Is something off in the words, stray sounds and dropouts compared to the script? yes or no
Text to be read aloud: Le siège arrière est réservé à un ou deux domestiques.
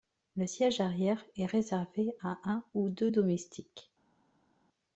no